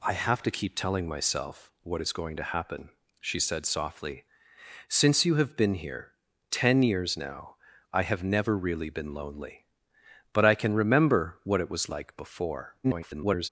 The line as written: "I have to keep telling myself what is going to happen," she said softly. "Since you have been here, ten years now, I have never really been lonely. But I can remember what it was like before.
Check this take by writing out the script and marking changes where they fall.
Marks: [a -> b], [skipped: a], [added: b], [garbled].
"I have to keep telling myself what is going to happen," she said softly. "Since you have been here, ten years now, I have never really been lonely. But I can remember what it was like before. [garbled]